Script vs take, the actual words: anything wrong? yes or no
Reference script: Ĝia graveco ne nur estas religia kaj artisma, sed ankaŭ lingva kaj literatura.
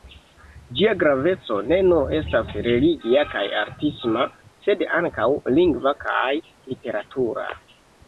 no